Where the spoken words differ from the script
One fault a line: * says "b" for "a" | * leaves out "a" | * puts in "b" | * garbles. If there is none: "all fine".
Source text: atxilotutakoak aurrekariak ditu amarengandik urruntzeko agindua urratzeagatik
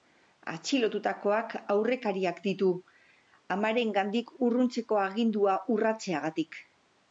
all fine